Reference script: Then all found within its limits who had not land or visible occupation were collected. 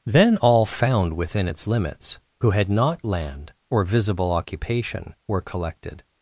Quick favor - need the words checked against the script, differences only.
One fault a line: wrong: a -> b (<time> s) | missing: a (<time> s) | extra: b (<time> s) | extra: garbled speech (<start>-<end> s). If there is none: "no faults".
no faults